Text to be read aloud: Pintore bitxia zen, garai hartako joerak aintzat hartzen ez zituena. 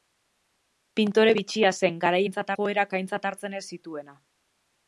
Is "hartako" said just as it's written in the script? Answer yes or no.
no